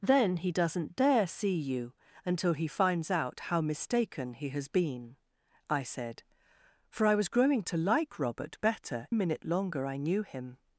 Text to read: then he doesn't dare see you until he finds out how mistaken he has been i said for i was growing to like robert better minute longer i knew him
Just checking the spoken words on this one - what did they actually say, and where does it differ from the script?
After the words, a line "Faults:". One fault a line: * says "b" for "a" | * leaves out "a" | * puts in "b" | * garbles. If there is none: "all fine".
then he doesn't dare see you until he finds out how mistaken he has been i said for i was growing to like robert better minute longer i knew him
Faults:
all fine